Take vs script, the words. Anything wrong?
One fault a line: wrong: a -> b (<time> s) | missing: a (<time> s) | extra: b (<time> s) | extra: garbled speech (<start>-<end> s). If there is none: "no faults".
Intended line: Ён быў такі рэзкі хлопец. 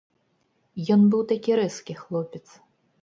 no faults